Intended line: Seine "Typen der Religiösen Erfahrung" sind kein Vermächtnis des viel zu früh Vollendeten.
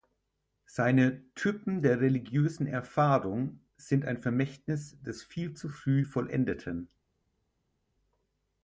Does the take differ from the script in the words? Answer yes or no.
yes